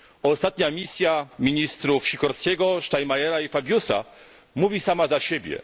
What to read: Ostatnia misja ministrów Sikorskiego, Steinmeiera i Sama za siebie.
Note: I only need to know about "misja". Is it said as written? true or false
true